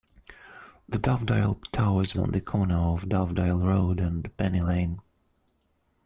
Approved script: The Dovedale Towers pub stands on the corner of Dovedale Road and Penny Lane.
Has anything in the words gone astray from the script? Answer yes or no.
yes